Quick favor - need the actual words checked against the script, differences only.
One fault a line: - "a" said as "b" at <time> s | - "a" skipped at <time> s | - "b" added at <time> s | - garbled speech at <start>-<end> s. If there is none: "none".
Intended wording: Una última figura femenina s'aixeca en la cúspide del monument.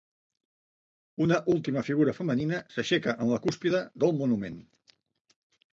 none